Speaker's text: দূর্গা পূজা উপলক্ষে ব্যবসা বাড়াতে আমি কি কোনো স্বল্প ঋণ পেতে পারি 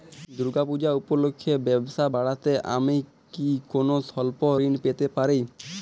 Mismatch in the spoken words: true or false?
false